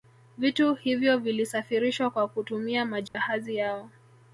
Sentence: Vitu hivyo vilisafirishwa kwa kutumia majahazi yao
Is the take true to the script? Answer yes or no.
yes